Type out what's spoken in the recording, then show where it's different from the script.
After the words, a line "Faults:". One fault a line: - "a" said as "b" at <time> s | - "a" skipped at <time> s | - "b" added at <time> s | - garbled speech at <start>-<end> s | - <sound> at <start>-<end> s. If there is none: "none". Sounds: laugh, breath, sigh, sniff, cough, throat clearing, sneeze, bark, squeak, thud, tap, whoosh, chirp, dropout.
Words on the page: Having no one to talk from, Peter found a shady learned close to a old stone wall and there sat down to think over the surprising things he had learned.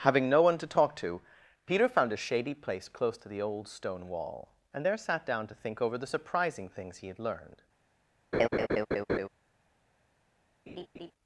Having no one to talk to, Peter found a shady place close to the old stone wall and there sat down to think over the surprising things he had learned.
Faults:
- "from" said as "to" at 0.9 s
- "learned" said as "place" at 2.5 s
- "a" said as "the" at 3.3 s
- laugh at 8.3-9.3 s
- laugh at 10.7-11.1 s